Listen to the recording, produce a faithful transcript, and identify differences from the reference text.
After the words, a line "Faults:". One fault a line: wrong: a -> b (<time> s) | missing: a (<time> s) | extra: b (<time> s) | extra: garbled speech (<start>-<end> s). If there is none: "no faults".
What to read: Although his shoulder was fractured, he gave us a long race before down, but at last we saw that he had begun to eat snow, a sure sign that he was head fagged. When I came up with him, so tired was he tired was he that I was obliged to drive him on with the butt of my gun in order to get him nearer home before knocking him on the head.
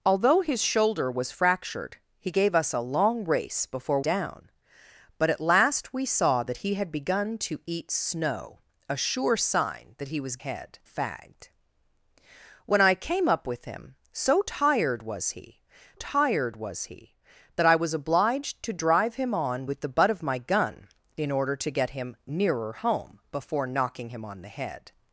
Although his shoulder was fractured, he gave us a long race before down, but at last we saw that he had begun to eat snow, a sure sign that he was head fagged. When I came up with him, so tired was he tired was he that I was obliged to drive him on with the butt of my gun in order to get him nearer home before knocking him on the head.
Faults:
no faults